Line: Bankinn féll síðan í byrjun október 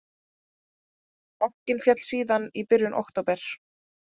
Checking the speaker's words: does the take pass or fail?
pass